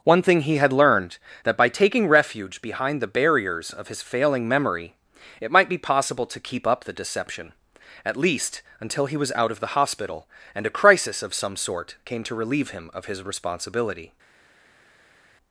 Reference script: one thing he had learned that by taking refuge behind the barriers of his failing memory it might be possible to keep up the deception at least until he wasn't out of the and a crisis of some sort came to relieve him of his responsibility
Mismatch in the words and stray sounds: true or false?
true